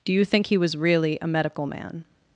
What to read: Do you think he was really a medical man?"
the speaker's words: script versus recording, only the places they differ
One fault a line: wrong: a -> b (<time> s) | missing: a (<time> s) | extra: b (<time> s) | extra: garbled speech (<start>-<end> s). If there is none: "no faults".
no faults